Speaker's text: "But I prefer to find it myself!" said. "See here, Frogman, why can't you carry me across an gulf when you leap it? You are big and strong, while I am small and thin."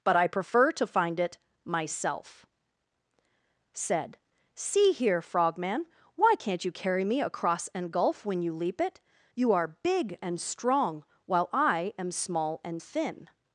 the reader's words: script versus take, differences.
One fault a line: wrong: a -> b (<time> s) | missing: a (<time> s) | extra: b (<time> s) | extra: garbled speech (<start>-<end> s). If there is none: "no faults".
no faults